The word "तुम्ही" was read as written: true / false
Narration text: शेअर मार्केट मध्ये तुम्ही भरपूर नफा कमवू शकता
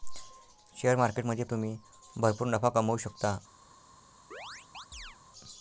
true